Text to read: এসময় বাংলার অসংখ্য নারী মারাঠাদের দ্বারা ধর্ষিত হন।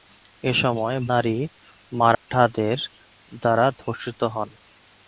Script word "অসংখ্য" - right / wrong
wrong